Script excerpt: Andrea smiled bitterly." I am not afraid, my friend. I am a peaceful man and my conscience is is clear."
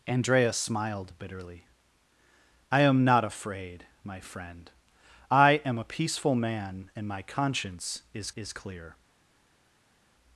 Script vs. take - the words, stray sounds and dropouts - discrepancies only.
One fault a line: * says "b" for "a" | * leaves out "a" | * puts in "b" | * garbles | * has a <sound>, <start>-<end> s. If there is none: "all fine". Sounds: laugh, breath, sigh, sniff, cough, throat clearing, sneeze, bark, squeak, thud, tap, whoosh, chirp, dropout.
all fine